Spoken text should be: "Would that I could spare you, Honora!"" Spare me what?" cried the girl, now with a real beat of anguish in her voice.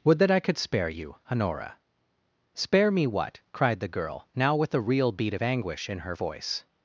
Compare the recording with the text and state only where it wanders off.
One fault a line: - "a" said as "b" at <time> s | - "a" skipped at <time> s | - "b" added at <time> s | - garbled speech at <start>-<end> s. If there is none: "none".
none